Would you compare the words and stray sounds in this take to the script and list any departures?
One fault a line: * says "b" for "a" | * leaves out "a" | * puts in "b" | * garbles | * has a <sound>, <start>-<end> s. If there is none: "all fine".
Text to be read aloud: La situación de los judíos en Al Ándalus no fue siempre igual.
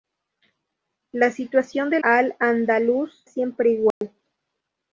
* leaves out "los judíos en"
* leaves out "no fue"
* has a dropout, 3.9-4.0 s